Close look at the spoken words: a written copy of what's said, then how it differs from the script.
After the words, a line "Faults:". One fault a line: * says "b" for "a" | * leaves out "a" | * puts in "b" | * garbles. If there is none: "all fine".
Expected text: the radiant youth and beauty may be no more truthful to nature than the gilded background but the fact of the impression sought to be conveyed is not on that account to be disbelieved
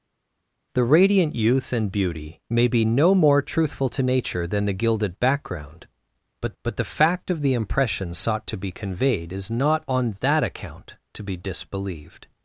the radiant youth and beauty may be no more truthful to nature than the gilded background but but the fact of the impression sought to be conveyed is not on that account to be disbelieved
Faults:
* puts in "but"